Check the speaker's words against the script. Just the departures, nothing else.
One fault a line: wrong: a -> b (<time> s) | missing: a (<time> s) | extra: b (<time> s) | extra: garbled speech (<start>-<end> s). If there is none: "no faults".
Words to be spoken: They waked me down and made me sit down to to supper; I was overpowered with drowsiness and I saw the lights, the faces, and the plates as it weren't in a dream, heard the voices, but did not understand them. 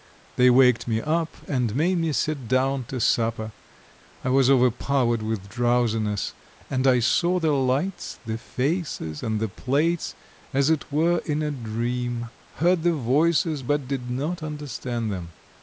wrong: down -> up (1.0 s)
missing: to (3.0 s)
wrong: weren't -> were (10.9 s)